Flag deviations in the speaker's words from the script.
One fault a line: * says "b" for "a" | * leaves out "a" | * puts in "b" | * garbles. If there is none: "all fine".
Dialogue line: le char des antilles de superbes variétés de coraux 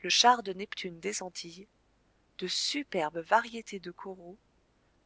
* puts in "de neptune"